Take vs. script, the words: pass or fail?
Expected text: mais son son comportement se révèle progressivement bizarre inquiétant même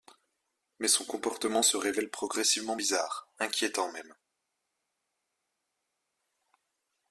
fail